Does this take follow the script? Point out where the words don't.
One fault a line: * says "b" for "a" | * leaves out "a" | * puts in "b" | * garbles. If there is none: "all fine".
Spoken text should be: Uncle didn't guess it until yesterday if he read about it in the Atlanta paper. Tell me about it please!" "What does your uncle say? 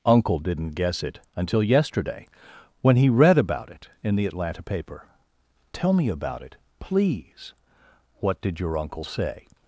* says "when" for "if"
* says "did" for "does"